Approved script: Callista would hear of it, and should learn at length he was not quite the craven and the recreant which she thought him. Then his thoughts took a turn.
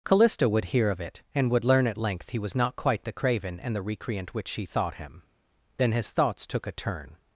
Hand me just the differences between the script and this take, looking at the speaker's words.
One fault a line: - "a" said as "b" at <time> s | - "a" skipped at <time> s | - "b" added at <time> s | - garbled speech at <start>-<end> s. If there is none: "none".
- "should" said as "would" at 1.5 s